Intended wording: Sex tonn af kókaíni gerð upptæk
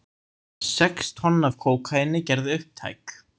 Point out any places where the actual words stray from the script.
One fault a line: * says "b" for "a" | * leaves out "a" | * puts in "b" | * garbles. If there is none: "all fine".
all fine